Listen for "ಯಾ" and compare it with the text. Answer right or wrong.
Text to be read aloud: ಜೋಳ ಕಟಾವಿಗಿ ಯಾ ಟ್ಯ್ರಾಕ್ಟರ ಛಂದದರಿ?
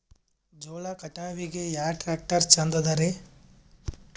right